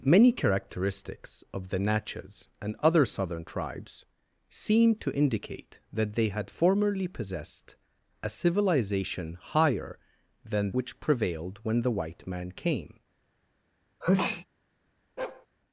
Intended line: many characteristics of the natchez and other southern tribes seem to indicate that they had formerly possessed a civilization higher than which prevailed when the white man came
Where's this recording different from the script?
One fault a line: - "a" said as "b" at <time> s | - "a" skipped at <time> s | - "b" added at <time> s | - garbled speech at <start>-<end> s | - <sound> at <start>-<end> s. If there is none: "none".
- sneeze at 14.0-14.5 s
- bark at 15.2-15.5 s